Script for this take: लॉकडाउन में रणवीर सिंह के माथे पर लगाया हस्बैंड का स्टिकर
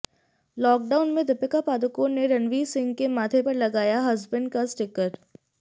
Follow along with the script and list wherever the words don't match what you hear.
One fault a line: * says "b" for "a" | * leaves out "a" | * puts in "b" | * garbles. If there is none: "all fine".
* puts in "दीपिका पादुकोण ने"